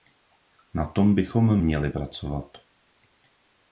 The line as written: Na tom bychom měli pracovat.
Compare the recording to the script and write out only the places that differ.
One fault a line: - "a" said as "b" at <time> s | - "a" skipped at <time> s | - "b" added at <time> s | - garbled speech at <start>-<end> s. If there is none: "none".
none